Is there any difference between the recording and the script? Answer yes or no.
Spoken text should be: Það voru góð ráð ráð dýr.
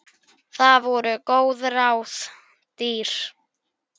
yes